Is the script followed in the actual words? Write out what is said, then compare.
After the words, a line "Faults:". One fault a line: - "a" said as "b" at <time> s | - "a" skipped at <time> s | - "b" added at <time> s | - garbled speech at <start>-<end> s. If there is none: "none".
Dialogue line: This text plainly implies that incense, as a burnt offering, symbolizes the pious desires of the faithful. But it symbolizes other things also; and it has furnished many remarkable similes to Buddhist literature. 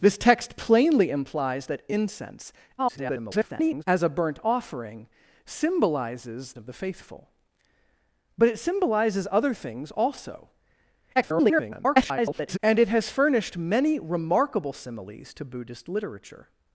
This text plainly implies that incense, [garbled] as a burnt offering, symbolizes of the faithful. But it symbolizes other things also; [garbled] and it has furnished many remarkable similes to Buddhist literature.
Faults:
- garbled speech at 2.8-3.8 s
- "the pious desires" skipped at 6.5 s
- garbled speech at 11.2-12.6 s